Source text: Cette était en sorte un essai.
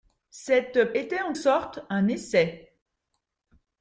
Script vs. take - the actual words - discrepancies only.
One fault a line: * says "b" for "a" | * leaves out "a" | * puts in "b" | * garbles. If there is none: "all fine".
all fine